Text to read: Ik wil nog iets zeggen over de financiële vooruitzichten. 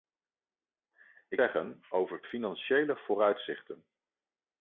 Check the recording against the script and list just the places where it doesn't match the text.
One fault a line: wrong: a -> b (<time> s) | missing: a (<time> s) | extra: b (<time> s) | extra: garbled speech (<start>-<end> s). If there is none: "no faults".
missing: wil nog iets (1.4 s)
missing: de (2.2 s)